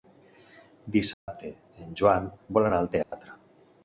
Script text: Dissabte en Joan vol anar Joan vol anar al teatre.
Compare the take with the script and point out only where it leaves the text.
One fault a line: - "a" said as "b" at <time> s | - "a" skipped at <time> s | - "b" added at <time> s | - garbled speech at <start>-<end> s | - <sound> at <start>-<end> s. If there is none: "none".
- dropout at 1.1-1.3 s
- "Joan vol anar" skipped at 2.8 s
- dropout at 3.0-3.1 s